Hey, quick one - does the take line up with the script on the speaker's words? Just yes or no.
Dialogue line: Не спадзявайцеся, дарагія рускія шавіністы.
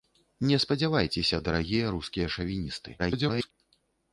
no